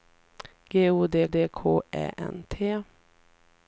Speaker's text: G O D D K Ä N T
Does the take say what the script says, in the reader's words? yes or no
yes